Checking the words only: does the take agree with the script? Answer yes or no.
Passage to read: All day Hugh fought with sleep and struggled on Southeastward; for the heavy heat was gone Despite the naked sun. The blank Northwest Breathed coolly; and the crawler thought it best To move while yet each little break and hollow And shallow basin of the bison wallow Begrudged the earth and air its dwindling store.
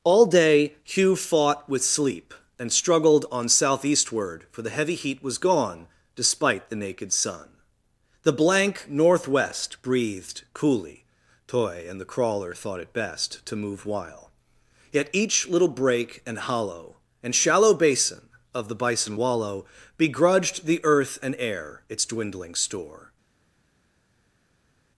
no